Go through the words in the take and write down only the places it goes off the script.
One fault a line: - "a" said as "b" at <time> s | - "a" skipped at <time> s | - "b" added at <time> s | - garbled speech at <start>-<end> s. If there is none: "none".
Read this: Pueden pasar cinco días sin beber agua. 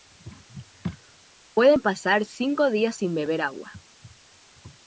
none